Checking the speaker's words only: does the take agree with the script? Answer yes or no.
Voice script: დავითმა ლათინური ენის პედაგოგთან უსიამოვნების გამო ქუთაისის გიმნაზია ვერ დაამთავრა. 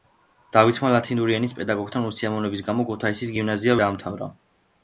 no